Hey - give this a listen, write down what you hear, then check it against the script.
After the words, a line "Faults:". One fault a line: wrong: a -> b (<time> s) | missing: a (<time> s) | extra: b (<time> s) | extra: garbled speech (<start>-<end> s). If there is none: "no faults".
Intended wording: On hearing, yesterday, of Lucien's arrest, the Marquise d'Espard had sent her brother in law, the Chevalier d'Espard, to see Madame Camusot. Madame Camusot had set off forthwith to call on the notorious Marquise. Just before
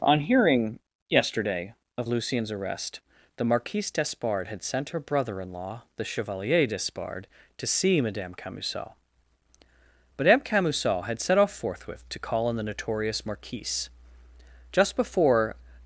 On hearing, yesterday, of Lucien's arrest, the Marquise d'Espard had sent her brother in law, the Chevalier d'Espard, to see Madame Camusot. Madame Camusot had set off forthwith to call on the notorious Marquise. Just before
Faults:
no faults